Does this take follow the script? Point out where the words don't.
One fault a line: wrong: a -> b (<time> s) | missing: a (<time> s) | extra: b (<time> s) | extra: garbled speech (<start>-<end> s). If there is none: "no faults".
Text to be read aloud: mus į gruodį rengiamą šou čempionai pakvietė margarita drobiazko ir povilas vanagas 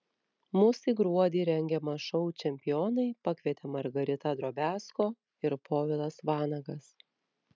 no faults